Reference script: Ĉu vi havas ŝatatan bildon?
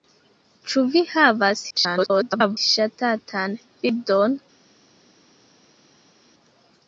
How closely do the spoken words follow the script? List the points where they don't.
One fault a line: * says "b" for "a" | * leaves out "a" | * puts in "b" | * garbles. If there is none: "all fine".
* garbles